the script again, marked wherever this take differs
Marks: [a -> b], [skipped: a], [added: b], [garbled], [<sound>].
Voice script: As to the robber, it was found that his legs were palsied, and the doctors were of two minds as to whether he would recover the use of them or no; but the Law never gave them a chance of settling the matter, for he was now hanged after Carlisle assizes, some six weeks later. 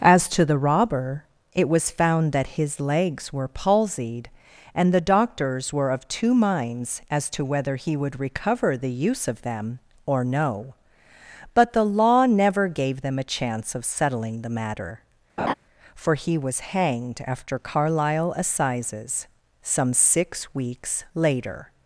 As to the robber, it was found that his legs were palsied, and the doctors were of two minds as to whether he would recover the use of them or no; but the Law never gave them a chance of settling the matter, [laugh] for he was [skipped: now] hanged after Carlisle assizes, some six weeks later.